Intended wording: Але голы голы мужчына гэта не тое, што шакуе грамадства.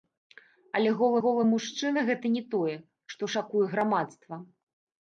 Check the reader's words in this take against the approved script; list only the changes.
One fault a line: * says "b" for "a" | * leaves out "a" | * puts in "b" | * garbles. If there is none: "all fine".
all fine